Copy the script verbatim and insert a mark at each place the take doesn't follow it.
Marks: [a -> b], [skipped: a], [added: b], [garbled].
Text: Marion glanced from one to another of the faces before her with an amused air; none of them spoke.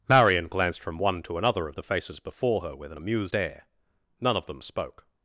Marion glanced from one to another of the faces before her with an amused air; none of them spoke.